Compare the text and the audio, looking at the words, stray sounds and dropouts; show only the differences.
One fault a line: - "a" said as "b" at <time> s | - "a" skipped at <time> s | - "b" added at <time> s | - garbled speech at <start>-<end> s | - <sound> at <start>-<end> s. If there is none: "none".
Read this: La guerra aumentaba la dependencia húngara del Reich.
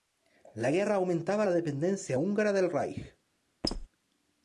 - squeak at 3.6-3.9 s